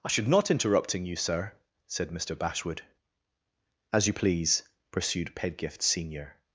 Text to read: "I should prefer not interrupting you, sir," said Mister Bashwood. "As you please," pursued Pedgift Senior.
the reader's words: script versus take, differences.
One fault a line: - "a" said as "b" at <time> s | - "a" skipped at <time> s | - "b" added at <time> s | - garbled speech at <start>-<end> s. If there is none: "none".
- "prefer" skipped at 0.3 s